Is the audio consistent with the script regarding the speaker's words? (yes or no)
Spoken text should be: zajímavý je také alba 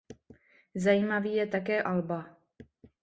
yes